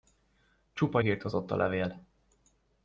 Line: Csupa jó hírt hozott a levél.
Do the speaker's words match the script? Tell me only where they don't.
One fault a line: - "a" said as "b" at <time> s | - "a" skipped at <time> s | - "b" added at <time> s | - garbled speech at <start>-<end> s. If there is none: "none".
- "jó" skipped at 1.0 s